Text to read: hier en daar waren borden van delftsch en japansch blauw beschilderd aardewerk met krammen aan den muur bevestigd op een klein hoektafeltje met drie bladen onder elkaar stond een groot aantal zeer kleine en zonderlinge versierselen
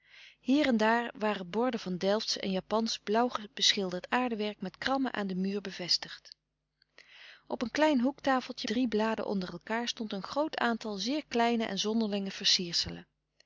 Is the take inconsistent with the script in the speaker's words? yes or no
yes